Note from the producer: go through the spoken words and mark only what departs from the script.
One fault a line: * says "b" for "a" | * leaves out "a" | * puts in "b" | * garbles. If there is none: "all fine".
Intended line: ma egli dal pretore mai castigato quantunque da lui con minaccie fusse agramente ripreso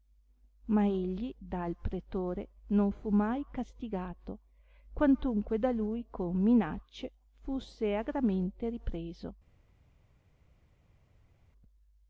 * puts in "non fu"